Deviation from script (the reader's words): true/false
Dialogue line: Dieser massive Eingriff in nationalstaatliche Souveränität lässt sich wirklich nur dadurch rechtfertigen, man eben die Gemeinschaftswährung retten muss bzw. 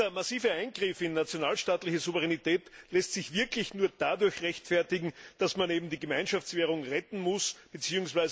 true